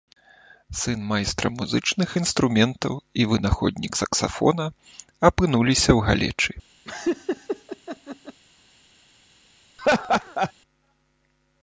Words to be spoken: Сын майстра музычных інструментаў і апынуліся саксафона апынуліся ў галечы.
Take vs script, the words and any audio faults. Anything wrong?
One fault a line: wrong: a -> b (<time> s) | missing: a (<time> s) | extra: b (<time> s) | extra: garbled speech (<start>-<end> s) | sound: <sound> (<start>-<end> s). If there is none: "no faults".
wrong: апынуліся -> вынаходнік (3.3 s)
sound: laugh (6.9-8.4 s)
sound: laugh (9.8-10.5 s)